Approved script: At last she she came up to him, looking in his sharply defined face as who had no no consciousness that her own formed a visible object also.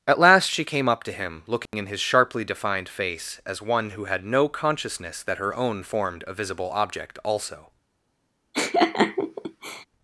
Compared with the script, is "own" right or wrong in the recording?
right